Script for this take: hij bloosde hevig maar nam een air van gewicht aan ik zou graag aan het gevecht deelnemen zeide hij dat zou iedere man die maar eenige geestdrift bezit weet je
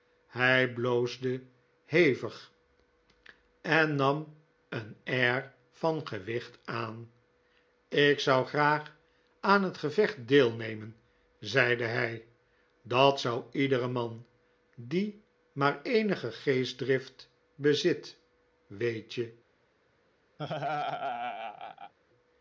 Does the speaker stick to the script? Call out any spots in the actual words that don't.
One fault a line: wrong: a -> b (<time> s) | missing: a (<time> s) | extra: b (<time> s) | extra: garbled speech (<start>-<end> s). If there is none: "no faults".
wrong: maar -> en (3.6 s)